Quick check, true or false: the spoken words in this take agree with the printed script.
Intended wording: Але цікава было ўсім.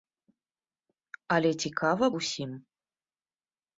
false